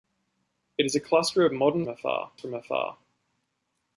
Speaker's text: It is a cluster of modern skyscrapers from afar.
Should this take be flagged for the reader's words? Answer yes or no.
yes